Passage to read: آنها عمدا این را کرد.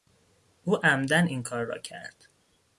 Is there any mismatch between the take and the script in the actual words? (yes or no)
yes